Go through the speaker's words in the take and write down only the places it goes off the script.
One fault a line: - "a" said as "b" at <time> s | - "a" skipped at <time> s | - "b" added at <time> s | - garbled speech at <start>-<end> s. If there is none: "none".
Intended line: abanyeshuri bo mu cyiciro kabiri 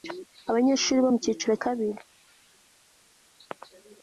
none